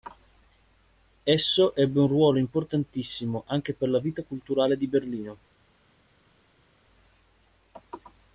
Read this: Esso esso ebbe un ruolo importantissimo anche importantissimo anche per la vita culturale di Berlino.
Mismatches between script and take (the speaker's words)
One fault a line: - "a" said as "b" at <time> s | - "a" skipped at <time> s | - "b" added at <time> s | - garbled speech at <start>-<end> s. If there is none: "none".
- "esso" skipped at 1.8 s
- "importantissimo anche" skipped at 3.8 s